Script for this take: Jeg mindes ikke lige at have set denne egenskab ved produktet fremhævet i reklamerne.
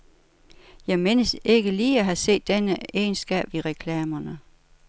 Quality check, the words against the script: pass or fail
fail